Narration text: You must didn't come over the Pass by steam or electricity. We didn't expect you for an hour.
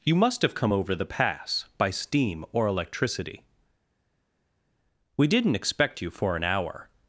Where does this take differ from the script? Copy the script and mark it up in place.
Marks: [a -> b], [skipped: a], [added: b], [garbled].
You must [didn't -> have] come over the Pass by steam or electricity. We didn't expect you for an hour.